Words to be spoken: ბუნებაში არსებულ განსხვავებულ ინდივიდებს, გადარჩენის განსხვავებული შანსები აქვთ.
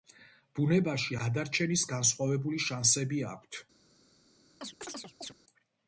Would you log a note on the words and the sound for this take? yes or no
yes